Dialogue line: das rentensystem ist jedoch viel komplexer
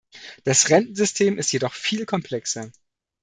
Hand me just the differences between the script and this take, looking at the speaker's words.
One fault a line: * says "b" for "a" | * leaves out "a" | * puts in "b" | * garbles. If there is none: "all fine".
all fine